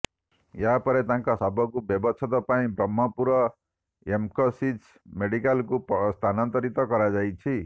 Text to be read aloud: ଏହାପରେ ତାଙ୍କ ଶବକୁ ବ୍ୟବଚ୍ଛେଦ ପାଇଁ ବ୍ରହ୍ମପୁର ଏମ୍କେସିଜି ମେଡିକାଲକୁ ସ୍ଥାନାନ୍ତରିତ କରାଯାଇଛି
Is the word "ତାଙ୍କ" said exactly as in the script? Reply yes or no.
yes